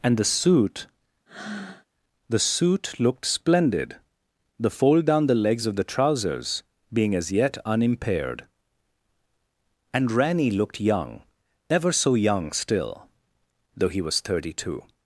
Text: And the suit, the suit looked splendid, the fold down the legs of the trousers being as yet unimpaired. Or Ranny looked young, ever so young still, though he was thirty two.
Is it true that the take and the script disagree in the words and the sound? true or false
true